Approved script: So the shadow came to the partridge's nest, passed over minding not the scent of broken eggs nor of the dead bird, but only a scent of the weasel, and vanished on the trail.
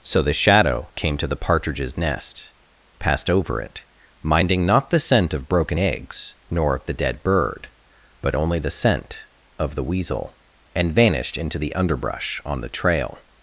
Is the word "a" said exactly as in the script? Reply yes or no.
no